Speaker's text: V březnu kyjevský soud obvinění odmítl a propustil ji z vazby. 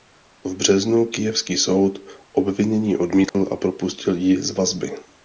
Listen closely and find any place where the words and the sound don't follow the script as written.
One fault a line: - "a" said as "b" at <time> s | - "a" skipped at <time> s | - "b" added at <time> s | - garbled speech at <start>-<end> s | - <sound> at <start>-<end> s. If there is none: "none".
- dropout at 3.3-3.3 s